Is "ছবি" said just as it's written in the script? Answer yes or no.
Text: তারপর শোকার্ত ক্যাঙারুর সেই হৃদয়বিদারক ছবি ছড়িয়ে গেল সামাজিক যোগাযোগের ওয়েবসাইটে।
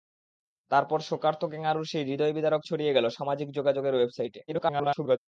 no